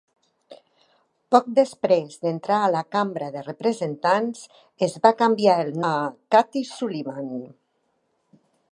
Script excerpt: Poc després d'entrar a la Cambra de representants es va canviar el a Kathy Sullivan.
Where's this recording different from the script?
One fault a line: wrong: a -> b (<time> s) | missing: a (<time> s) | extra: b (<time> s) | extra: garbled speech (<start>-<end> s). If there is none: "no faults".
no faults